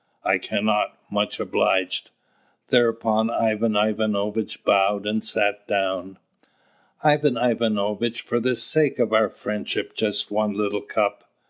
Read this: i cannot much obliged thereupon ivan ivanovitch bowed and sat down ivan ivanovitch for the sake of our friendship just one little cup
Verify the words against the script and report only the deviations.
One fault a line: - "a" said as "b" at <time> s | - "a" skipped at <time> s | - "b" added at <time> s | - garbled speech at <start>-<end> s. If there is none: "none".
none